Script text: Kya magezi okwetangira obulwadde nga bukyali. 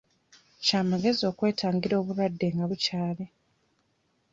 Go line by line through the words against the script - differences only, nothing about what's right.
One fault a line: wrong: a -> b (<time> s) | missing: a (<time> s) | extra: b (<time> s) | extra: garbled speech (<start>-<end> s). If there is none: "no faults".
no faults